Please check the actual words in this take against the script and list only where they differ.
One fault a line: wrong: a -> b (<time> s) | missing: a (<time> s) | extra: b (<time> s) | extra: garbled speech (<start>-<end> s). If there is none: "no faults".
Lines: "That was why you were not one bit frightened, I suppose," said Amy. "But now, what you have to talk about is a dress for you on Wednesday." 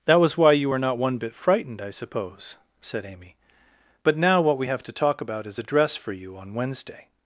wrong: you -> we (4.6 s)